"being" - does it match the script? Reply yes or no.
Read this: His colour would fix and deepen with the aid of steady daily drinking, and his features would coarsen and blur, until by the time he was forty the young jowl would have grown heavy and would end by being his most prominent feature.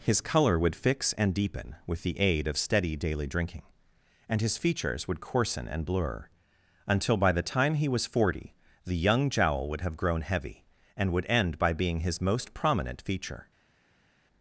yes